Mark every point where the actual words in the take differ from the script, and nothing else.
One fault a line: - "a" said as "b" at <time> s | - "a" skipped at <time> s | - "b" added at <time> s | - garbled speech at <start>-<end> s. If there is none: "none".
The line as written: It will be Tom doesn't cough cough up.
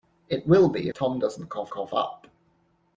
none